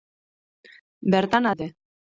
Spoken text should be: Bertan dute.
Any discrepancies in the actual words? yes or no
no